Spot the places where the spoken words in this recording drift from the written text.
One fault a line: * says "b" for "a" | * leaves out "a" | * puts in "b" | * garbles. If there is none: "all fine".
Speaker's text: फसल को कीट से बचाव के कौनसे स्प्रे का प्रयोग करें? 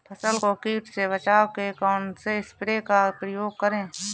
all fine